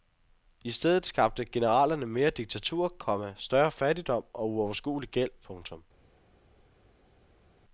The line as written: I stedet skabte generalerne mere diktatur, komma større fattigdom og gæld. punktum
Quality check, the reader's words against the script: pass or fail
fail